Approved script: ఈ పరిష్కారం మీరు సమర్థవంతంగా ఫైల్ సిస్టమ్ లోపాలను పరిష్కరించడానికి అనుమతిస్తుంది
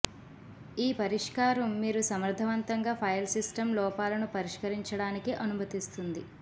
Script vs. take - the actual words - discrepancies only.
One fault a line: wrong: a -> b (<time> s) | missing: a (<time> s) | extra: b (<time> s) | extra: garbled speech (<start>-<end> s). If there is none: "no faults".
no faults